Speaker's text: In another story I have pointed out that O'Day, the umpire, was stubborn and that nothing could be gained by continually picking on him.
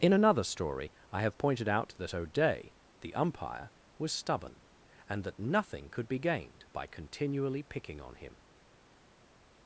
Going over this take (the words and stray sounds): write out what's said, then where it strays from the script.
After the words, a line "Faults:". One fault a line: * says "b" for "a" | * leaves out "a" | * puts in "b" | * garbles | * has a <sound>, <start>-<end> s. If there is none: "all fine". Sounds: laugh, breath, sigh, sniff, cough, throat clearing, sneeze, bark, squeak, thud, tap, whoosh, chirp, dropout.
In another story I have pointed out that O'Day, the umpire, was stubborn and that nothing could be gained by continually picking on him.
Faults:
all fine